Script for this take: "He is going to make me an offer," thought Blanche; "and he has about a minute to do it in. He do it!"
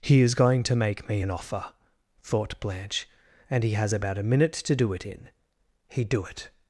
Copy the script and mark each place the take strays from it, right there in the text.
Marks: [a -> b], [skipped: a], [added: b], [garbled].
"He is going to make me an offer," thought Blanche; "and he has about a minute to do it in. He do it!"